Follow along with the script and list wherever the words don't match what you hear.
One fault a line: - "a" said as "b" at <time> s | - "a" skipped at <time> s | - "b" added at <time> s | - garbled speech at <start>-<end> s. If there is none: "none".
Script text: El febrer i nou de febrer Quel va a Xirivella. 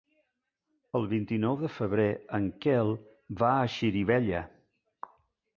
- "febrer" said as "vint" at 1.1 s
- "en" added at 2.4 s